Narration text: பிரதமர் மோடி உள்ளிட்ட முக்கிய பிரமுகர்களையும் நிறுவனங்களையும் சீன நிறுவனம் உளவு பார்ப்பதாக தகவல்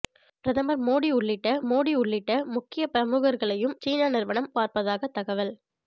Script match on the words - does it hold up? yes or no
no